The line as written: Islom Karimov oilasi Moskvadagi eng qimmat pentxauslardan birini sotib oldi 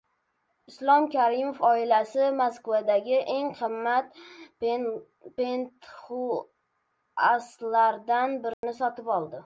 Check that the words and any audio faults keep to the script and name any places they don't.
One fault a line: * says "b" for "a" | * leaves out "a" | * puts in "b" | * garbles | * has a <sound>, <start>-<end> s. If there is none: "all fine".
* has a dropout, 8.5-8.6 s